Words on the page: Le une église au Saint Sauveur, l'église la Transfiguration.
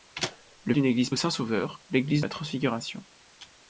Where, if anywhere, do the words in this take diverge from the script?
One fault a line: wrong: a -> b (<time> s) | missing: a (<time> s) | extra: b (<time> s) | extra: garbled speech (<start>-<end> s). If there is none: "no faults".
no faults